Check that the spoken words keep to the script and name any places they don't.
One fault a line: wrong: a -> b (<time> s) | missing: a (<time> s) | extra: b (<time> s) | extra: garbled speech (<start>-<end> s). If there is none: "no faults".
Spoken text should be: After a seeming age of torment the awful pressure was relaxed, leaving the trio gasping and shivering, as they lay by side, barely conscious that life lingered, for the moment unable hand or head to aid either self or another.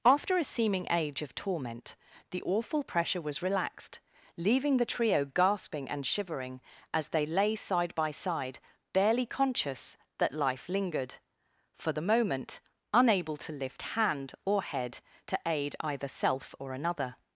extra: side (7.5 s)
extra: to lift (13.4 s)